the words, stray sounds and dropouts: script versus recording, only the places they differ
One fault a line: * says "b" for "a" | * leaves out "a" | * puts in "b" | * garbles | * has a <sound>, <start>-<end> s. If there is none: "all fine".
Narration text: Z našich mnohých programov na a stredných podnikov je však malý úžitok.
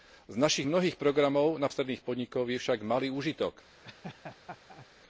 * has a laugh, 3.8-4.9 s